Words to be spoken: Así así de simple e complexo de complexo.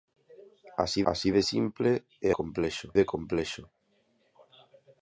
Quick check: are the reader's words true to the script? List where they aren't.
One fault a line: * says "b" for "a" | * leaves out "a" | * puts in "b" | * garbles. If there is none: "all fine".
all fine